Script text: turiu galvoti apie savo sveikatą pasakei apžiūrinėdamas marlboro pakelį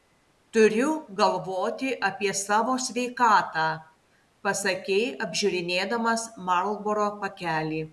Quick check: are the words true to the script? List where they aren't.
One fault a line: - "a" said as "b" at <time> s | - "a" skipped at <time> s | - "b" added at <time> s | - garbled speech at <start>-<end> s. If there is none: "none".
none